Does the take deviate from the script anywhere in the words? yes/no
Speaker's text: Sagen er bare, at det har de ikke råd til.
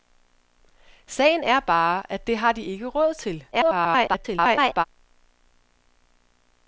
yes